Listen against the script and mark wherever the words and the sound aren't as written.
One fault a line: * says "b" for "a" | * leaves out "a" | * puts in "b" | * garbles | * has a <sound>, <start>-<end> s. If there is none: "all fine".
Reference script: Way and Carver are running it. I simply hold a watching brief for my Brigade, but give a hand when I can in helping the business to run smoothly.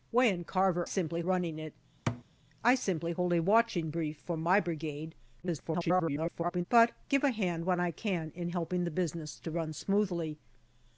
* says "simply" for "are"
* has a thud, 2.1-2.2 s
* garbles